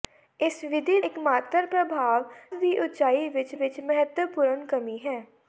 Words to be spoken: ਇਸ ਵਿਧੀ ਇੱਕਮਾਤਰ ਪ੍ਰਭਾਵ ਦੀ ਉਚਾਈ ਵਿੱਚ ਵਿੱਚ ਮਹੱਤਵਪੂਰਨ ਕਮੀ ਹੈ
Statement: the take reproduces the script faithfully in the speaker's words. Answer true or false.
true